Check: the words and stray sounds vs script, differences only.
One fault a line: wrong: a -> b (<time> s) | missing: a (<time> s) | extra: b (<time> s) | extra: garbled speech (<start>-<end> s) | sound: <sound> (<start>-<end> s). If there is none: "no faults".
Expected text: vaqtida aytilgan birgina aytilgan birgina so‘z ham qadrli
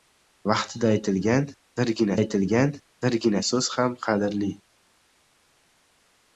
no faults